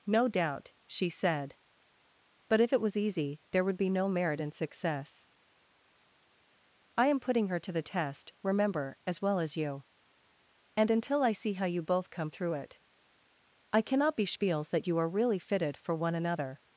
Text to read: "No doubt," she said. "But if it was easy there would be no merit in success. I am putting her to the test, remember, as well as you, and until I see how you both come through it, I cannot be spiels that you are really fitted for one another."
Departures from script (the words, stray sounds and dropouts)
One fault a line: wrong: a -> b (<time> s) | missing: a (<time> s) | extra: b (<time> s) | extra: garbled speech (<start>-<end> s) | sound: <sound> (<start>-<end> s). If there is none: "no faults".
no faults